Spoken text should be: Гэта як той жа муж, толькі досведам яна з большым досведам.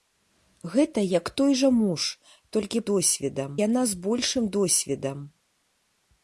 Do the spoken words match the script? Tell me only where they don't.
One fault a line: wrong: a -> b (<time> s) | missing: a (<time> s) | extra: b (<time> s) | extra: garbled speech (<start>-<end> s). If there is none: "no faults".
no faults